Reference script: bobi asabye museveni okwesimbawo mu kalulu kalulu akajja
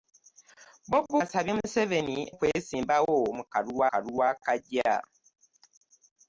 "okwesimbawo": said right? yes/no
yes